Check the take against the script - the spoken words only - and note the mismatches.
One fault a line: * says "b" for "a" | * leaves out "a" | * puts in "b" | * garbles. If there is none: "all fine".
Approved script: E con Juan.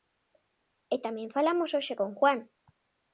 * puts in "tamén falamos hoxe"